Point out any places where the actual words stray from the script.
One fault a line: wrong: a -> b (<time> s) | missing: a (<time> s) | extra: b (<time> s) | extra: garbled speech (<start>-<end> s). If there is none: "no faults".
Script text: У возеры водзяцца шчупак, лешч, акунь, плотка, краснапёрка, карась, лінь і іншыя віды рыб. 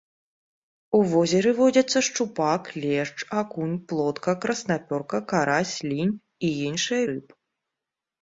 missing: віды (7.0 s)